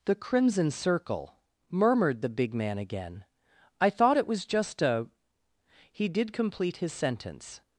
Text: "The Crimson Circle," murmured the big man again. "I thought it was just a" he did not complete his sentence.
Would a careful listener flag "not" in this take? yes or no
yes